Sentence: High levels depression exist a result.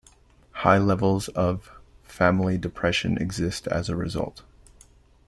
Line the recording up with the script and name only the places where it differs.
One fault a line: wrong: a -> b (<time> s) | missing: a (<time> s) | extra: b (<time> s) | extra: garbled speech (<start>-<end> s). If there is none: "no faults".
extra: of family (1.3 s)
extra: as (3.7 s)